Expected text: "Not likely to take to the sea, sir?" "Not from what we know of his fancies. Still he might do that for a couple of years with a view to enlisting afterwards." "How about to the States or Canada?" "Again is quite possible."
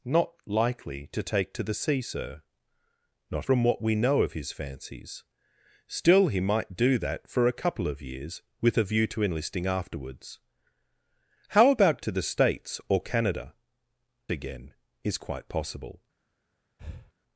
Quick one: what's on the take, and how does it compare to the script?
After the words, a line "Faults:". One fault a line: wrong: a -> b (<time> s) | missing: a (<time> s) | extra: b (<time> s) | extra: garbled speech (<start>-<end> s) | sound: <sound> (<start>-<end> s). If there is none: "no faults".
"Not likely to take to the sea, sir?" "Not from what we know of his fancies. Still he might do that for a couple of years with a view to enlisting afterwards." "How about to the States or Canada?" "Again is quite possible."
Faults:
sound: breath (16.8-17.1 s)